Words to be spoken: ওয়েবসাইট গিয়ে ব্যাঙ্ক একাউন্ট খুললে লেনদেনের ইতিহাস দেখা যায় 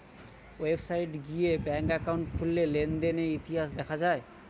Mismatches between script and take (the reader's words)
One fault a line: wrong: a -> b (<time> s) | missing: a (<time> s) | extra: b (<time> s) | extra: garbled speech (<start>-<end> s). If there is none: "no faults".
no faults